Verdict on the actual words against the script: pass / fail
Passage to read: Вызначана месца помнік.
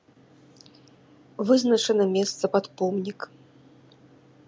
fail